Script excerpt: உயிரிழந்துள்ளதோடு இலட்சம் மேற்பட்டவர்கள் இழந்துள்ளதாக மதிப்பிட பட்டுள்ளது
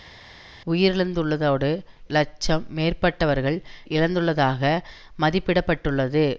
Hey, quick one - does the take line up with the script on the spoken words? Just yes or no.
yes